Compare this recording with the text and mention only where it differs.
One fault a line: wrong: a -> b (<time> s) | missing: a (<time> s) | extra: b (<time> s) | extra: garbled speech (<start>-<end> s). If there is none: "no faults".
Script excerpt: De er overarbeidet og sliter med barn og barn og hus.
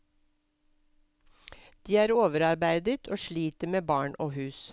missing: barn og (4.3 s)